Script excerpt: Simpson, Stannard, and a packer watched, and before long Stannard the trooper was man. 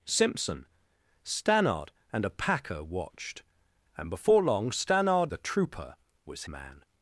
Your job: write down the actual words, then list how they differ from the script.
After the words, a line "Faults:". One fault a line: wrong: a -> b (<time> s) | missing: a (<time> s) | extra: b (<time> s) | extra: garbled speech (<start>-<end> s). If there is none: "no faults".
Simpson, Stannard, and a packer watched, and before long Stannard the trooper was man.
Faults:
no faults